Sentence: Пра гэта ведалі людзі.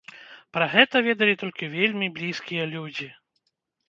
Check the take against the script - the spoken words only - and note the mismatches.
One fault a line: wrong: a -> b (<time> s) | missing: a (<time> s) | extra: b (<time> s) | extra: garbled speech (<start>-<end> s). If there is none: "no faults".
extra: толькі вельмі блізкія (1.4 s)